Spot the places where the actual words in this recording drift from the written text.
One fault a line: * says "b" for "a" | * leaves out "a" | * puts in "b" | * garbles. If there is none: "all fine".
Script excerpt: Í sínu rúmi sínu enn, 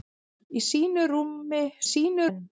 all fine